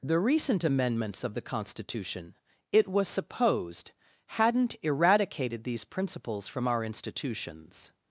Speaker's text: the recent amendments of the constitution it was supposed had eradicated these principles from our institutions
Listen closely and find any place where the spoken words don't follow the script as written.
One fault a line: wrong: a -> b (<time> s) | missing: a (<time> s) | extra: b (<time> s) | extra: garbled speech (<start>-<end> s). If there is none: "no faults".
wrong: had -> hadn't (4.2 s)